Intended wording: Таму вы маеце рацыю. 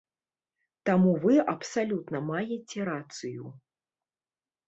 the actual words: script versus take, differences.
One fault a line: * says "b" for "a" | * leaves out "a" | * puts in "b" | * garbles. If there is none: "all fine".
* puts in "абсалютна"